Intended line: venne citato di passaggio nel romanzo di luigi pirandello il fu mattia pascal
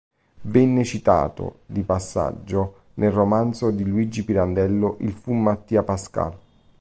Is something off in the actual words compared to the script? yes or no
no